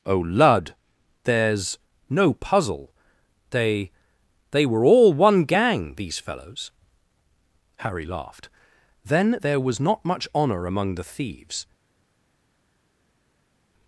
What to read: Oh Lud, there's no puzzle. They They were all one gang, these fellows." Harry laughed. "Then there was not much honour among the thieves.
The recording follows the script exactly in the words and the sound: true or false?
true